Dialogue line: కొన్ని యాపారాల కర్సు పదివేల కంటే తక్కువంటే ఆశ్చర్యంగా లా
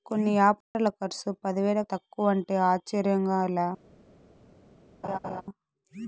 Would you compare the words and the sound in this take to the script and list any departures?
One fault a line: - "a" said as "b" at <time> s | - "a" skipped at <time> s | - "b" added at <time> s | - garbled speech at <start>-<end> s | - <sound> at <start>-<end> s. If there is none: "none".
- dropout at 0.6-0.7 s
- "కంటే" skipped at 1.8 s
- laugh at 5.0-5.4 s